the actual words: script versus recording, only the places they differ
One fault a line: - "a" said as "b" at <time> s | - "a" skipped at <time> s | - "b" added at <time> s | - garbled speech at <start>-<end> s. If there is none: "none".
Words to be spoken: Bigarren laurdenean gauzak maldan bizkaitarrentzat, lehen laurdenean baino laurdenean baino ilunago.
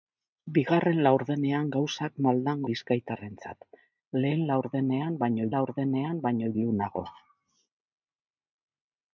none